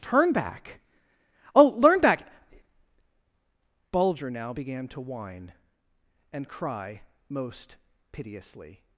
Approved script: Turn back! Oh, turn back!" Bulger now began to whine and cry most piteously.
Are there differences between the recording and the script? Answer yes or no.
yes